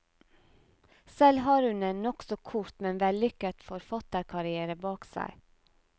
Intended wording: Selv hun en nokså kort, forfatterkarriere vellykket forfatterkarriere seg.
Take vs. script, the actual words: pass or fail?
fail